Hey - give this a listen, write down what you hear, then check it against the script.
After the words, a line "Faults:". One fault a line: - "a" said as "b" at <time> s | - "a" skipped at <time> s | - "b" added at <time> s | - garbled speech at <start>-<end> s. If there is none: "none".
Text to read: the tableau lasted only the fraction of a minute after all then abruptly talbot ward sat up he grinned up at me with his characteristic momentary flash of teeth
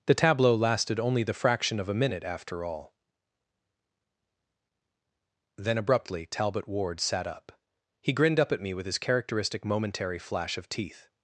the tableau lasted only the fraction of a minute after all then abruptly talbot ward sat up he grinned up at me with his characteristic momentary flash of teeth
Faults:
none